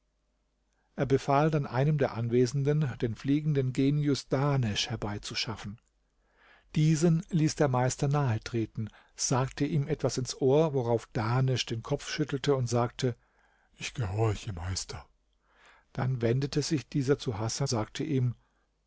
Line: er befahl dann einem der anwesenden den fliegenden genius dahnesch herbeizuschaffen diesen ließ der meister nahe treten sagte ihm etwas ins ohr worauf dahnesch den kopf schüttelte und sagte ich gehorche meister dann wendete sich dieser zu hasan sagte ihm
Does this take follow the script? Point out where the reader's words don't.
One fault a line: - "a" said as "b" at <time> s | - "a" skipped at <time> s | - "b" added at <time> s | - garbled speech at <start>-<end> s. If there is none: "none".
none